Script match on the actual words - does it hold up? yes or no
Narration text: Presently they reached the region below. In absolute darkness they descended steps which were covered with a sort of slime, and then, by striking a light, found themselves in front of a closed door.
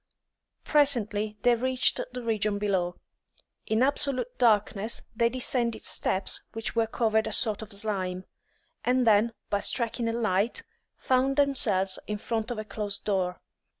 no